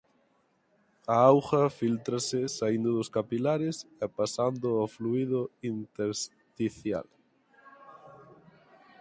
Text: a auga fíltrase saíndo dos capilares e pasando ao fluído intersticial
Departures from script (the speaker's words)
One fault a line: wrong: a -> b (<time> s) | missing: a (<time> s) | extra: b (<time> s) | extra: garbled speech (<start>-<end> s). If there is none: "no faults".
no faults